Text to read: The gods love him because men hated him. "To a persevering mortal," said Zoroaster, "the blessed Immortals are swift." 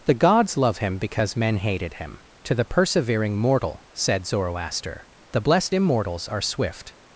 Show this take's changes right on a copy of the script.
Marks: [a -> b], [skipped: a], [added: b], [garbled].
The gods love him because men hated him. "To [a -> the] persevering mortal," said Zoroaster, "the blessed Immortals are swift."